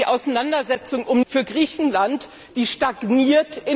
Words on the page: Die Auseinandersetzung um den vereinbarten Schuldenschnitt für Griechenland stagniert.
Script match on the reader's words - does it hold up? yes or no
no